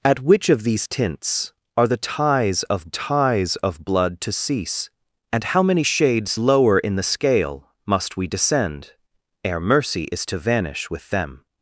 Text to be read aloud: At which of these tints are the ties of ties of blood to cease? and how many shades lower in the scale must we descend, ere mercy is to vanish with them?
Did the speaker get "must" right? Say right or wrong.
right